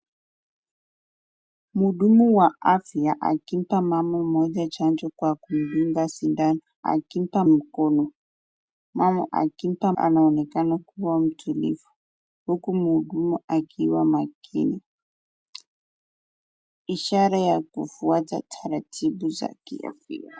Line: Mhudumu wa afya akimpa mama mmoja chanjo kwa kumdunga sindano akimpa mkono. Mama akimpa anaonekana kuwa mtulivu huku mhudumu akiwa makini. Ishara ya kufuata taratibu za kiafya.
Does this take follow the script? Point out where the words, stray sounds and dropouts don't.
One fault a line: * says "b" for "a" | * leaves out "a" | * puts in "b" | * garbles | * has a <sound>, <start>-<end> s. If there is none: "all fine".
all fine